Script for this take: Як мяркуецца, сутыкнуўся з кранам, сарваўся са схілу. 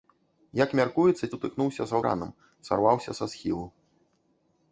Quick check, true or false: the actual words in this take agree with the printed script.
true